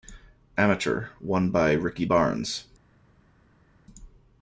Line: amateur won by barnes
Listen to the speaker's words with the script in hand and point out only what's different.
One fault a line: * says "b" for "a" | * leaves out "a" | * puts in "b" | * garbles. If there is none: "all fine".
* puts in "ricky"